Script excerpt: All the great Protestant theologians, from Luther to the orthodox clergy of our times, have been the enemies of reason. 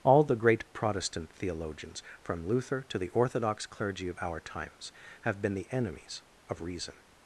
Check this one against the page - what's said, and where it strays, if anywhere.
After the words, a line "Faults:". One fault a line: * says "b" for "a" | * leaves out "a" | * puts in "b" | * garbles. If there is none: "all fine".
All the great Protestant theologians, from Luther to the orthodox clergy of our times, have been the enemies of reason.
Faults:
all fine